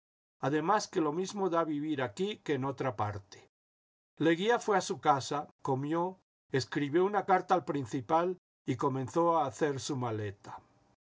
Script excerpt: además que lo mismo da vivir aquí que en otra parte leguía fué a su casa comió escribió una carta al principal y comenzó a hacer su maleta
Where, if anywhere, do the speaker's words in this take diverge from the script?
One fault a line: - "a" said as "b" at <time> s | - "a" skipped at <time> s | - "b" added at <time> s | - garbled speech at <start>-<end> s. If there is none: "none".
none